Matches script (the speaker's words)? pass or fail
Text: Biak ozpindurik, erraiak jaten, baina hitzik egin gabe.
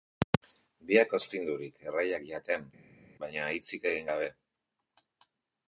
pass